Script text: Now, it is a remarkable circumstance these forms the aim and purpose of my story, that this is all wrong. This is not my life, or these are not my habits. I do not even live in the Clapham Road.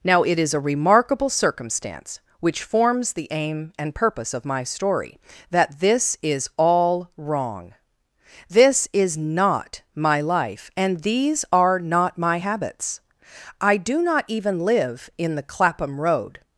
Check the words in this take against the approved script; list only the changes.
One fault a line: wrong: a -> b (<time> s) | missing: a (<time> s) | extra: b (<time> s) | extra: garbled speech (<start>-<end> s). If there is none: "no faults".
wrong: these -> which (2.4 s)
wrong: or -> and (10.8 s)